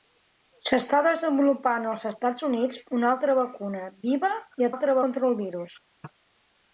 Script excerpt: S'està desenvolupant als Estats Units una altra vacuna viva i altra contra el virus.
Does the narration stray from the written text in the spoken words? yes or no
no